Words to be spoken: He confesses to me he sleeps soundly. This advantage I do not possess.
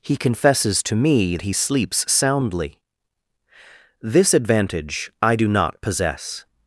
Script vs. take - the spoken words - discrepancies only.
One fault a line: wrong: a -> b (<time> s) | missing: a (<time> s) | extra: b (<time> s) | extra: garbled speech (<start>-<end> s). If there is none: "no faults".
no faults